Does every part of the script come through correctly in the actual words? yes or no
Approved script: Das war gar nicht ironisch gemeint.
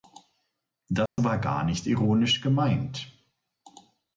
yes